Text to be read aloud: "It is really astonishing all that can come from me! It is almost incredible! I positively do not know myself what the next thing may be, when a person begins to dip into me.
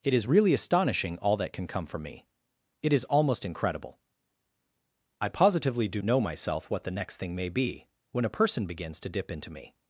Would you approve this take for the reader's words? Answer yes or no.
no